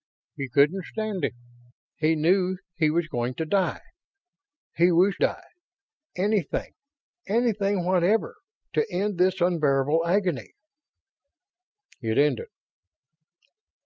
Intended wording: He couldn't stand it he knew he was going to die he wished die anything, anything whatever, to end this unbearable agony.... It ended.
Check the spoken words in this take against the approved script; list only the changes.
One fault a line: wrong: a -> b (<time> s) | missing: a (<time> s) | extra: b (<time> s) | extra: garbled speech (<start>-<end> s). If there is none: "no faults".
no faults